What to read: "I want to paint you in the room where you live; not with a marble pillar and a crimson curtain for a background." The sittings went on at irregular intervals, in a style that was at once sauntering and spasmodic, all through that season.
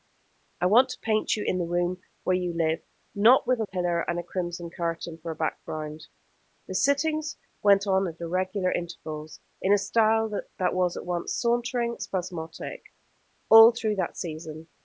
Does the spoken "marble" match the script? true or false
false